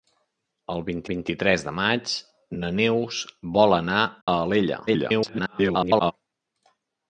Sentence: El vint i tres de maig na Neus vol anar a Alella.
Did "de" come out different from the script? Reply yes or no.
no